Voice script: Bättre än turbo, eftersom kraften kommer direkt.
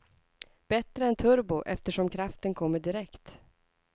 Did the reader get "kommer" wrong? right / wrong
right